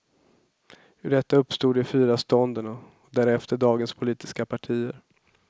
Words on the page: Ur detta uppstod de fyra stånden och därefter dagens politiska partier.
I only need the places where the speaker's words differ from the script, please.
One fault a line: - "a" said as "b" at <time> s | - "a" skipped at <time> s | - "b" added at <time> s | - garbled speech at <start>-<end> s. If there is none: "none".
none